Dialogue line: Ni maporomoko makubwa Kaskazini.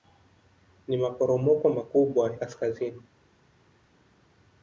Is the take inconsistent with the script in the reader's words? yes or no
no